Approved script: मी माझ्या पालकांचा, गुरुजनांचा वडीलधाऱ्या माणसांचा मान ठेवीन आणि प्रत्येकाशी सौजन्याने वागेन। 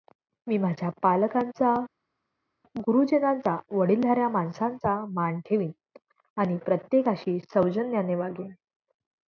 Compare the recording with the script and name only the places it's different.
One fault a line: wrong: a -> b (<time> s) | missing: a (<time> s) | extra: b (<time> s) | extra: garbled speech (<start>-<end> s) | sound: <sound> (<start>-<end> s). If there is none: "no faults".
no faults